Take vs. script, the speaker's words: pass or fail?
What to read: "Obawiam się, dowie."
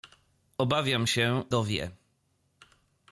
pass